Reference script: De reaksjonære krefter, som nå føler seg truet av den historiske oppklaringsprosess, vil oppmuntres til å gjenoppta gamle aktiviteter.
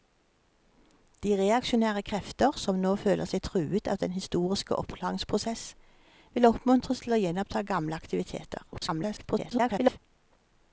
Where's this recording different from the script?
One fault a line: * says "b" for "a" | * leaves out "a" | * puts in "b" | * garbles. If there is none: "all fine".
* garbles